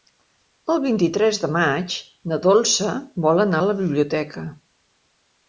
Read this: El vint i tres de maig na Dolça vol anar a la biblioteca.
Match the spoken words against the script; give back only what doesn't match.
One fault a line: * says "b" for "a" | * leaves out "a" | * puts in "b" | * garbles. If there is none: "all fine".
all fine